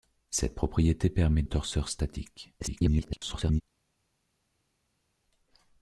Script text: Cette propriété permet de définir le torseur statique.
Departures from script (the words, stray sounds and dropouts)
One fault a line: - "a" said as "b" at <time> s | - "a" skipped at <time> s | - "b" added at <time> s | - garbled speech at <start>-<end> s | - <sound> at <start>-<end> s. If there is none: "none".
- "de définir le" skipped at 1.4 s
- garbled speech at 2.6-3.6 s